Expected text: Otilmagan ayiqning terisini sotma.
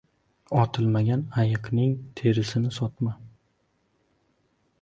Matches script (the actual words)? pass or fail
pass